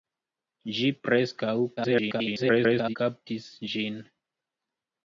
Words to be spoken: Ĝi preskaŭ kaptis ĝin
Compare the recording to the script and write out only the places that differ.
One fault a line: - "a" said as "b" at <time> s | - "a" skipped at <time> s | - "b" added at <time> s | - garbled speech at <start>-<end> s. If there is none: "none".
- garbled speech at 1.8-3.0 s